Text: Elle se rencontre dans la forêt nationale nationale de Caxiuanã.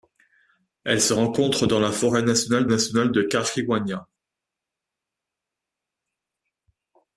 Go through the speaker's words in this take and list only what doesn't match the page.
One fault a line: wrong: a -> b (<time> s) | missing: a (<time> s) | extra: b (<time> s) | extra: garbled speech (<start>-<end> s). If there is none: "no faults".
no faults